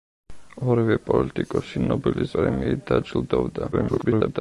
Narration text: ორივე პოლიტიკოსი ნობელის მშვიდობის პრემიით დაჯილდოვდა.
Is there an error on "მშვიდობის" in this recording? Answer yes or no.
yes